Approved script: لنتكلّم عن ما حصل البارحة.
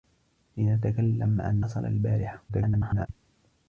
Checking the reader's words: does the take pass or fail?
fail